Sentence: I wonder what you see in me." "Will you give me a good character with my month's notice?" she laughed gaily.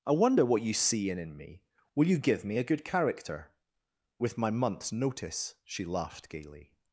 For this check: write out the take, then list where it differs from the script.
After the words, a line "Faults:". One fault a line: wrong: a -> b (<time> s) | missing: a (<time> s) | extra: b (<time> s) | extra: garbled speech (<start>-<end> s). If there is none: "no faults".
I wonder what you see in in me." "Will you give me a good character with my month's notice?" she laughed gaily.
Faults:
extra: in (1.2 s)